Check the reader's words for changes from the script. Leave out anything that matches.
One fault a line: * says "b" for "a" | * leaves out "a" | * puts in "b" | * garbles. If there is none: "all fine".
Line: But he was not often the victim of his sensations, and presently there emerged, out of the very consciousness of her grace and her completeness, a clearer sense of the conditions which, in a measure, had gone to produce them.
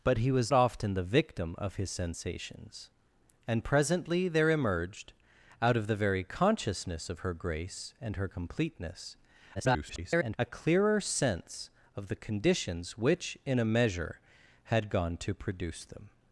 * leaves out "not"
* garbles